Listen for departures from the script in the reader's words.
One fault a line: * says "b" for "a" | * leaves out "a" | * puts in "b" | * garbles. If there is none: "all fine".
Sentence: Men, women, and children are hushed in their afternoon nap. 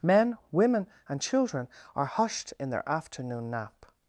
all fine